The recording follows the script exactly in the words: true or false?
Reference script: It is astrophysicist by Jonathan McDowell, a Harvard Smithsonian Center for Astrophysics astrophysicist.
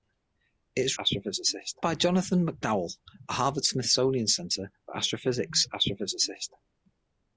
true